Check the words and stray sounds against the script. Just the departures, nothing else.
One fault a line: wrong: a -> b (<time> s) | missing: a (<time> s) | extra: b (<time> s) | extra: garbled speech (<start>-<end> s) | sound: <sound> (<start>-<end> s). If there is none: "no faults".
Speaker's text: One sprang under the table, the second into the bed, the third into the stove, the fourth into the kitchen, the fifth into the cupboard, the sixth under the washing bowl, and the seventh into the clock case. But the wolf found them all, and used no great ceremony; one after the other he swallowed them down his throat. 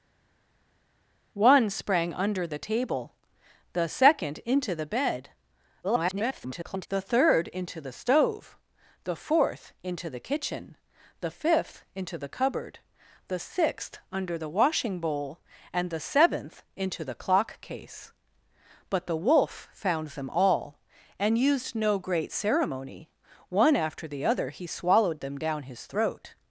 extra: garbled speech (5.8-6.9 s)